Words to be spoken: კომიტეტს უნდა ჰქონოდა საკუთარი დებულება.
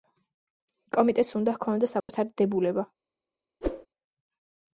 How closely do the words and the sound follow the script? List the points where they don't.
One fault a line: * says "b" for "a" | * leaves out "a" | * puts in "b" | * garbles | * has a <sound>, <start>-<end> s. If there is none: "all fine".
* has a dropout, 2.0-2.1 s
* has a whoosh, 3.6-3.9 s